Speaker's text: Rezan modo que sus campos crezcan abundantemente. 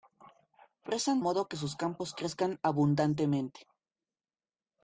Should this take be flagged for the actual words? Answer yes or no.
no